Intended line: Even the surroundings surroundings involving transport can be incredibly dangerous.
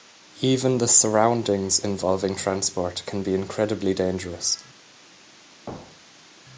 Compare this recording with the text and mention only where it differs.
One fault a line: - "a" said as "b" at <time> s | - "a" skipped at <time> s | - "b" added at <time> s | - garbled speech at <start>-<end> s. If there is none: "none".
- "surroundings" skipped at 1.8 s